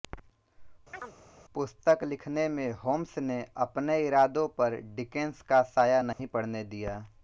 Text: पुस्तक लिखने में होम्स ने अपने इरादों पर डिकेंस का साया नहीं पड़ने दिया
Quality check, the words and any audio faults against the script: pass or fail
fail